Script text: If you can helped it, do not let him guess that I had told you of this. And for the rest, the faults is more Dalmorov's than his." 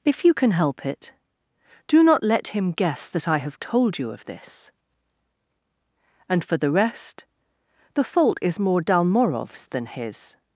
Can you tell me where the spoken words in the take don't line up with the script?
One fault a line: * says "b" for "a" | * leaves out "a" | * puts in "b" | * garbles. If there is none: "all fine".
* says "help" for "helped"
* says "have" for "had"
* says "fault" for "faults"